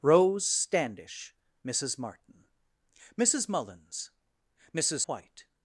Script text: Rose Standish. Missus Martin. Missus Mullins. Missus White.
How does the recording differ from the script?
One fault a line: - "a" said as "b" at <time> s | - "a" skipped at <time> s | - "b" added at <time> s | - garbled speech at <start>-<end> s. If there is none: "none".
none